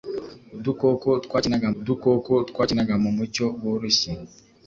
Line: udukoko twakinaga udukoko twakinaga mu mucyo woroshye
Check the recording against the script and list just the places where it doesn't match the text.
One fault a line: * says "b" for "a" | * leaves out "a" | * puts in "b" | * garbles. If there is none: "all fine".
all fine